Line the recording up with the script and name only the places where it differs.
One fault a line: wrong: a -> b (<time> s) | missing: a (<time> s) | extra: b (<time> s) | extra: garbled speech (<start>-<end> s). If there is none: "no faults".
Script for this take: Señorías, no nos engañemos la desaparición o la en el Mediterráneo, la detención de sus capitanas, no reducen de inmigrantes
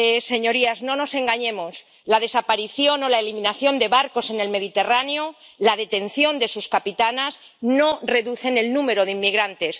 extra: eliminación de barcos (3.2 s)
extra: el número (8.6 s)